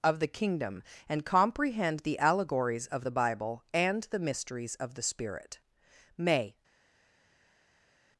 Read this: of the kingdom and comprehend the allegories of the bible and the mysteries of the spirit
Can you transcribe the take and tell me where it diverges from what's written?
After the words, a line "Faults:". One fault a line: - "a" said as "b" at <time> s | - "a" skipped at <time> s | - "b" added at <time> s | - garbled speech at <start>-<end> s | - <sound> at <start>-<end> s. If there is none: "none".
of the kingdom and comprehend the allegories of the bible and the mysteries of the spirit may
Faults:
- "may" added at 6.2 s